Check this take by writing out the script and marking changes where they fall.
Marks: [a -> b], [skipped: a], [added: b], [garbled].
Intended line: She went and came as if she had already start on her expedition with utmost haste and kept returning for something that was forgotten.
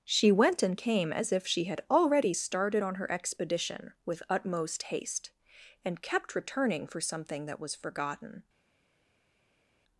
She went and came as if she had already [start -> started] on her expedition with utmost haste and kept returning for something that was forgotten.